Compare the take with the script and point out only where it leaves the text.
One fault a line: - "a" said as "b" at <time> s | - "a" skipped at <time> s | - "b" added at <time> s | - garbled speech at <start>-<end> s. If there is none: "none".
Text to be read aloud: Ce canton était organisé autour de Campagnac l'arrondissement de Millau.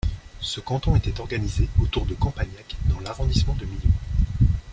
- "dans" added at 2.9 s